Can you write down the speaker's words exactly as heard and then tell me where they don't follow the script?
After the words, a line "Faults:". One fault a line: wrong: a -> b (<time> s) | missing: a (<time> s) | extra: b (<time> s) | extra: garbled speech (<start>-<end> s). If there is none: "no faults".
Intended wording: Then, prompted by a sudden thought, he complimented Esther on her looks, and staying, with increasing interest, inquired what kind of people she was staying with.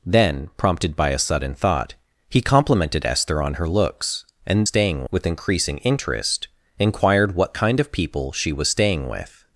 Then, prompted by a sudden thought, he complimented Esther on her looks, and staying, with increasing interest, inquired what kind of people she was staying with.
Faults:
no faults